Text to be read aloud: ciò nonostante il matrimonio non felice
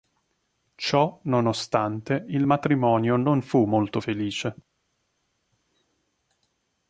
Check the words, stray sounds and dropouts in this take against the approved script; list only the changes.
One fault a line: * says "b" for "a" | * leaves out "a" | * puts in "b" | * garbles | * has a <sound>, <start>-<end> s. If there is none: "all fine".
* puts in "fu molto"